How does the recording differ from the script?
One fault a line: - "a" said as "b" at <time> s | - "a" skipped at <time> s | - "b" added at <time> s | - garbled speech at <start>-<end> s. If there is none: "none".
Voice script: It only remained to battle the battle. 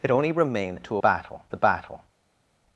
none